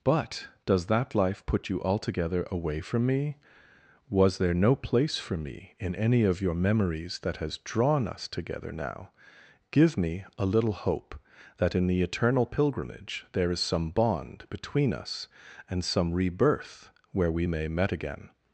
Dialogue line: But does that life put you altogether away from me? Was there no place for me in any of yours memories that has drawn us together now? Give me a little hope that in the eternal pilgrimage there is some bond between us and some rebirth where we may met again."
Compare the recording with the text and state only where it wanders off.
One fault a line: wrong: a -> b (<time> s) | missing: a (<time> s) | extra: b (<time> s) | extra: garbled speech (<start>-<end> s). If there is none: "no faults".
wrong: yours -> your (6.4 s)